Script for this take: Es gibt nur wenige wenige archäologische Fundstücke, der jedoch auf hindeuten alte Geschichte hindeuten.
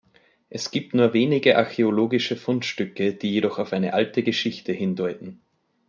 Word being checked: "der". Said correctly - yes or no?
no